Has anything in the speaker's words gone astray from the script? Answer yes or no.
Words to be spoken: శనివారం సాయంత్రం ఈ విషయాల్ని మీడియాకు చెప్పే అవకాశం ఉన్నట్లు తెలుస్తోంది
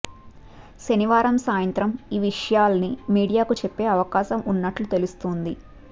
no